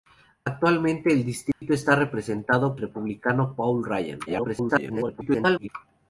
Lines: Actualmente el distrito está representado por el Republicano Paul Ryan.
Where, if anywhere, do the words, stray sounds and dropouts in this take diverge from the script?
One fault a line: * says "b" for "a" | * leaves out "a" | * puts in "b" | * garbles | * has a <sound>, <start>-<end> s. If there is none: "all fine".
* has a dropout, 1.5-1.6 s
* leaves out "por el"
* garbles